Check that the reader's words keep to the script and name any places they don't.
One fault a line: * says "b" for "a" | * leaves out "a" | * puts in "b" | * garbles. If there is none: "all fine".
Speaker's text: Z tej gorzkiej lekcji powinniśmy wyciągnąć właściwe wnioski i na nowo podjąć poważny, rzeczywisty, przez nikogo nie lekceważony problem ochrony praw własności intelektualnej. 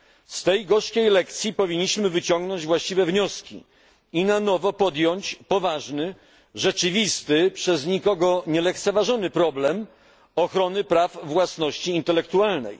all fine